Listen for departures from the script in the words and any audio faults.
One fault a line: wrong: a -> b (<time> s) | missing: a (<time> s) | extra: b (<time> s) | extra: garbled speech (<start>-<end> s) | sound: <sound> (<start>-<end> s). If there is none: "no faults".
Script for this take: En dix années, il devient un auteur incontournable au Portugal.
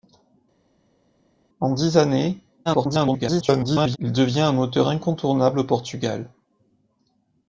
extra: garbled speech (2.7-4.0 s)